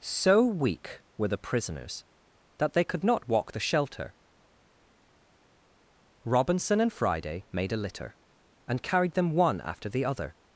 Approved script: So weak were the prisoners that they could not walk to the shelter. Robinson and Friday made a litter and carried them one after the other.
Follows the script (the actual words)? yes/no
no